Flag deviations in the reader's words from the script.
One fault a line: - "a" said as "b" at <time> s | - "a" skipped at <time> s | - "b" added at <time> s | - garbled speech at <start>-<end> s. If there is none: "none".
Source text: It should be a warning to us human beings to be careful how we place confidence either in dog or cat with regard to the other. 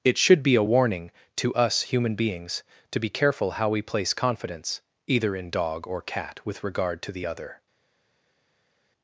none